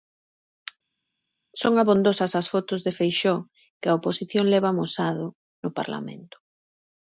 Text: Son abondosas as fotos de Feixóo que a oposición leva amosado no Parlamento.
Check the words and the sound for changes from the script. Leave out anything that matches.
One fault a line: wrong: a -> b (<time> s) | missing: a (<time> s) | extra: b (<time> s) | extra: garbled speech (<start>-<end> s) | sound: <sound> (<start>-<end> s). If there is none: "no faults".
no faults